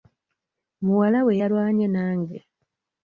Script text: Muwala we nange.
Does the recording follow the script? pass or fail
fail